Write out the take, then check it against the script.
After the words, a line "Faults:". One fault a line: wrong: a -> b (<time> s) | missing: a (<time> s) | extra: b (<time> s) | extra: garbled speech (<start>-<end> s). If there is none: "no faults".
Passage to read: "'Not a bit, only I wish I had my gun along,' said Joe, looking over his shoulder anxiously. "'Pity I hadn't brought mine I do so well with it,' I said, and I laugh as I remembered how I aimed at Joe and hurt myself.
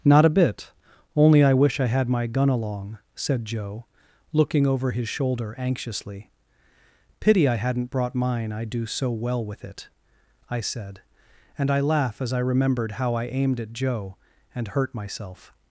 "'Not a bit, only I wish I had my gun along,' said Joe, looking over his shoulder anxiously. "'Pity I hadn't brought mine I do so well with it,' I said, and I laugh as I remembered how I aimed at Joe and hurt myself.
Faults:
no faults